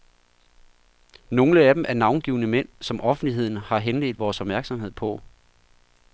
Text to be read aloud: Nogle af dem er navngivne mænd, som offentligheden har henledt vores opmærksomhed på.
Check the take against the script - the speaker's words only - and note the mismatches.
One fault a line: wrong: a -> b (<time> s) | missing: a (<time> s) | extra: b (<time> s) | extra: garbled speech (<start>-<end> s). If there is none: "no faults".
no faults